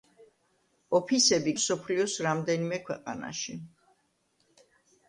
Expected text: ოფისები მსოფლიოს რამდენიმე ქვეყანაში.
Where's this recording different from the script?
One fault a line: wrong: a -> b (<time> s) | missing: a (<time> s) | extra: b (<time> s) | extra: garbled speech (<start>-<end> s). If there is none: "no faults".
no faults